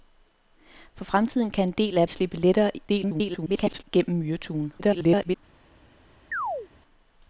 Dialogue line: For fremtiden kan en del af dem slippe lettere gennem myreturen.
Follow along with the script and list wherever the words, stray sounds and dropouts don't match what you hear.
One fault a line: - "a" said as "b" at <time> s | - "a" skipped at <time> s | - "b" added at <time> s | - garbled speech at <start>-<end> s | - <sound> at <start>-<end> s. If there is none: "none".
- "dem" skipped at 2.1 s
- garbled speech at 2.9-3.8 s
- garbled speech at 4.8-5.4 s
- chirp at 6.3-6.7 s